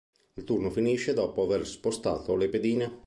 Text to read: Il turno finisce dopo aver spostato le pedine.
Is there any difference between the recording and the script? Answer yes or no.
no